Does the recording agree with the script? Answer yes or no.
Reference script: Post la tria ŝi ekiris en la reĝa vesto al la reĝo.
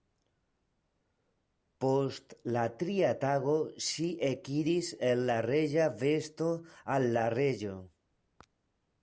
no